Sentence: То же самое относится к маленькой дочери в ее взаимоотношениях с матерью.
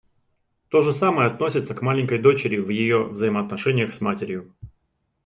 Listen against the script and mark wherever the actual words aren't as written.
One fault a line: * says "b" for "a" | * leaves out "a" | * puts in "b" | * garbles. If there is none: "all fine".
all fine